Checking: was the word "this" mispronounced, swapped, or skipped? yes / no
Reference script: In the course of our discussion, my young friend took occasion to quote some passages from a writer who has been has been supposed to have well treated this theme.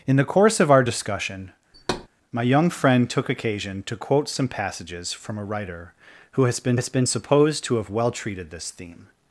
no